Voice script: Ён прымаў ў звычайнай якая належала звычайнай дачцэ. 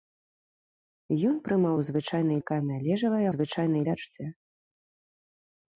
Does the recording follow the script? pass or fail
pass